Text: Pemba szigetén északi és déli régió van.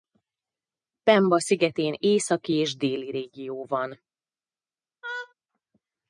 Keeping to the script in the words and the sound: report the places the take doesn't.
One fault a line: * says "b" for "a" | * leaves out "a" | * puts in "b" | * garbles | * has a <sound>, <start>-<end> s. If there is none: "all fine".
* has a laugh, 5.0-5.3 s